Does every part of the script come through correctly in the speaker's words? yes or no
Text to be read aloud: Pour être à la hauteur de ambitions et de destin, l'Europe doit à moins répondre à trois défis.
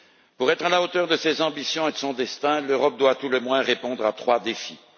no